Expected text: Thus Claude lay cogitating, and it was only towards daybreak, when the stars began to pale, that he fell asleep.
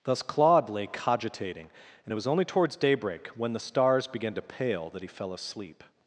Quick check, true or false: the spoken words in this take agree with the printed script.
true